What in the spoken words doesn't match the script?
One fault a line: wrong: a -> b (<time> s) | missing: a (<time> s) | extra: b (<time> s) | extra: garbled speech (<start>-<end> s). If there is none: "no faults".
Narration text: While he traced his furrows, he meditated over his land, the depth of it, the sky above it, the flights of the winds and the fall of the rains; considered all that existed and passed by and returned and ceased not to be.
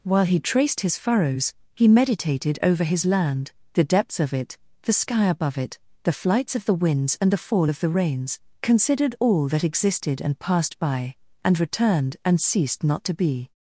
wrong: depth -> depths (3.8 s)